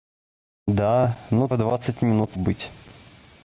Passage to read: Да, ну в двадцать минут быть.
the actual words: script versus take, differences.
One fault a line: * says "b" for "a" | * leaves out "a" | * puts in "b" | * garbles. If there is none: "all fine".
all fine